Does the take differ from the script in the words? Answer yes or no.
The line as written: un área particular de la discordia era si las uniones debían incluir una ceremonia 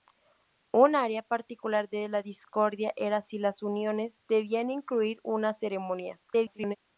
yes